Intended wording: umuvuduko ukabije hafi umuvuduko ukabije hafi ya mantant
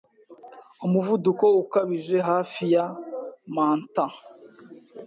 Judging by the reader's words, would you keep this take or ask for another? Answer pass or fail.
fail